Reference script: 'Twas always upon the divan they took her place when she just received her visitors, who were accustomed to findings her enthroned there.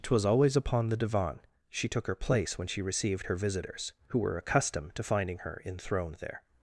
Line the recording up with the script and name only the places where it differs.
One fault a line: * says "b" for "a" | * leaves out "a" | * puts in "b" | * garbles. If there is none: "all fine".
* says "she" for "they"
* leaves out "just"
* says "finding" for "findings"